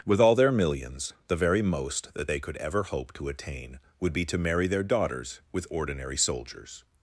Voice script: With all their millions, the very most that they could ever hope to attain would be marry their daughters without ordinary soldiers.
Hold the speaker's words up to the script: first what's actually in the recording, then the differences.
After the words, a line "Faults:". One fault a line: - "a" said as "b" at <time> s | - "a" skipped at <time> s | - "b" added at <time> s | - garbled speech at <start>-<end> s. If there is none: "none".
With all their millions, the very most that they could ever hope to attain would be to marry their daughters with ordinary soldiers.
Faults:
- "to" added at 4.3 s
- "without" said as "with" at 5.5 s